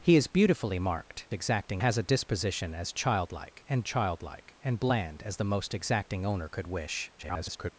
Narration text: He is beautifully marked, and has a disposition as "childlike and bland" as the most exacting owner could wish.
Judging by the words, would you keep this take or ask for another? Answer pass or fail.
fail